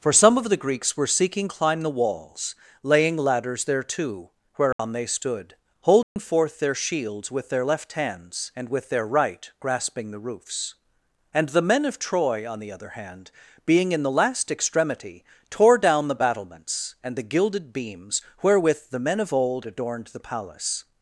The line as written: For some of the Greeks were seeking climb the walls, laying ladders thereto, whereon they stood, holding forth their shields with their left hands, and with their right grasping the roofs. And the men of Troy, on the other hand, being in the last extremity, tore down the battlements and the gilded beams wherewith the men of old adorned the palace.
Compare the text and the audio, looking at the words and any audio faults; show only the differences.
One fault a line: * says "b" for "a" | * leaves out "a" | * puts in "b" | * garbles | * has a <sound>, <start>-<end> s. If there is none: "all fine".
* has a dropout, 4.7-4.8 s
* has a dropout, 6.0-6.2 s